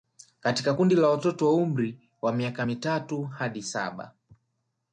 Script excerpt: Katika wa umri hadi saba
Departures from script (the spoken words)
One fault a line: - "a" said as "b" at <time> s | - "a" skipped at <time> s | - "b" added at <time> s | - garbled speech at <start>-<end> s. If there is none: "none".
- "kundi la watoto" added at 0.7 s
- "wa miaka mitatu" added at 2.2 s